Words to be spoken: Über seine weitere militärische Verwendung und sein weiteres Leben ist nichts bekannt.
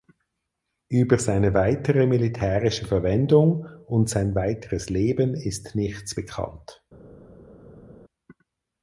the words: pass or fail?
pass